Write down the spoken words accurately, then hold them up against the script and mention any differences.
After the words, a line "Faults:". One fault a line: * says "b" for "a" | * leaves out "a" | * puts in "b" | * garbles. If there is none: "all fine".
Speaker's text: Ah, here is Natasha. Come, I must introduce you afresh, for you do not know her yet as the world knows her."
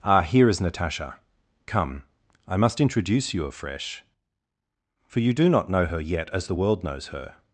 Ah, here is Natasha. Come, I must introduce you afresh, for you do not know her yet as the world knows her."
Faults:
all fine